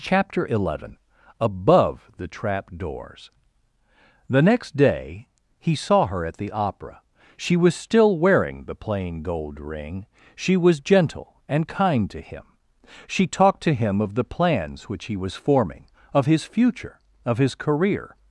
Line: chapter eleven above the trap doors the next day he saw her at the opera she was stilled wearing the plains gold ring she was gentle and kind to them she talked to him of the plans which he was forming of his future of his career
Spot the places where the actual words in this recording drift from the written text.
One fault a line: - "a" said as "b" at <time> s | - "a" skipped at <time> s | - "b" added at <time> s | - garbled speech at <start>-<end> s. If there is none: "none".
- "stilled" said as "still" at 7.8 s
- "plains" said as "plain" at 8.7 s
- "them" said as "him" at 12.2 s